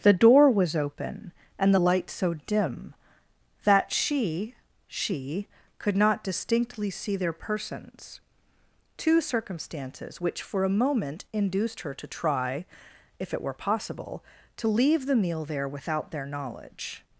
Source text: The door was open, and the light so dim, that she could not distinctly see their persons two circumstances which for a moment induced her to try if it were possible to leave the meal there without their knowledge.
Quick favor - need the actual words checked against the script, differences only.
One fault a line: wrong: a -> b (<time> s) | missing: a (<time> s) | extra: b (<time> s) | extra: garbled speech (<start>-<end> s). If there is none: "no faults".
extra: she (4.9 s)